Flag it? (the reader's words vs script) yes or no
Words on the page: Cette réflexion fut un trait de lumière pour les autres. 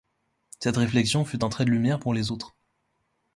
no